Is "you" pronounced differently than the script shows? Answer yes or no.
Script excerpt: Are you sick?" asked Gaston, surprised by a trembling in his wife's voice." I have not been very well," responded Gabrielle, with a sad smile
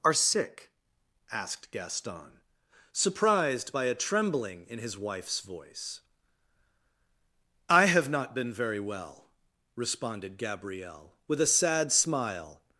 yes